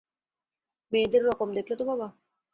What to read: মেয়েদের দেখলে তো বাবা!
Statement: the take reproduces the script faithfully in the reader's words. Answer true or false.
false